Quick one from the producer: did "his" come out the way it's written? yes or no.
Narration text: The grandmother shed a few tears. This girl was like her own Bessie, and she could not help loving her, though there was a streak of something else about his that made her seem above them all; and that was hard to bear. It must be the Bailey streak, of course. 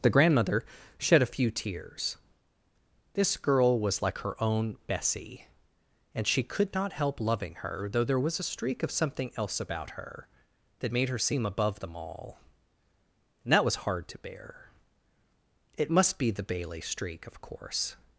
no